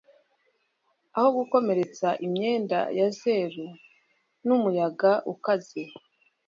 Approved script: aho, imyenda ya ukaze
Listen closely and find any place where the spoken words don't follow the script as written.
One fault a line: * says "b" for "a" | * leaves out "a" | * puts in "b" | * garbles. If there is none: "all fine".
* puts in "gukomeretsa"
* puts in "zeru n'umuyaga"